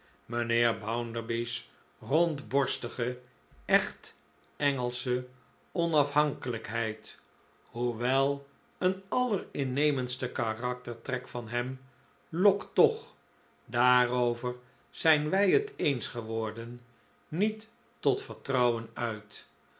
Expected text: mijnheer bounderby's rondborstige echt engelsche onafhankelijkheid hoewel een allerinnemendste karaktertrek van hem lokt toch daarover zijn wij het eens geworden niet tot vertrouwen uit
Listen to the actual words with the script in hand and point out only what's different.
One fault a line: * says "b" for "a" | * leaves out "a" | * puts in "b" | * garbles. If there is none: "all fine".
all fine